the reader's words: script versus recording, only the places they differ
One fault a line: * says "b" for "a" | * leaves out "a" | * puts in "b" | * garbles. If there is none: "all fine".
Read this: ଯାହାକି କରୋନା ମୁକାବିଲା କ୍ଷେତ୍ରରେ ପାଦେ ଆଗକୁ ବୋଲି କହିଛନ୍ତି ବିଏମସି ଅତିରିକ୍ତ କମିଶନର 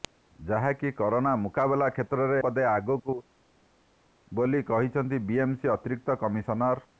all fine